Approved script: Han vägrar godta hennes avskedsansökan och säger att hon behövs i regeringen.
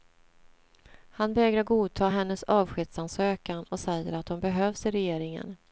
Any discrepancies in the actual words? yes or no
no